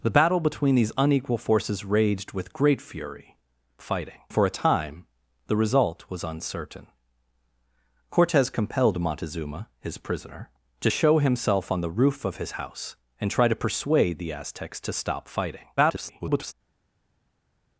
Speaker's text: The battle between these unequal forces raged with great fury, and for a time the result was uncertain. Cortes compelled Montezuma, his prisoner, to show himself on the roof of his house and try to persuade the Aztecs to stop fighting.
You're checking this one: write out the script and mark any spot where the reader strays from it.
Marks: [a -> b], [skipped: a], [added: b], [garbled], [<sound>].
The battle between these unequal forces raged with great fury, [and -> fighting] for a time the result was uncertain. Cortes compelled Montezuma, his prisoner, to show himself on the roof of his house and try to persuade the Aztecs to stop fighting. [garbled]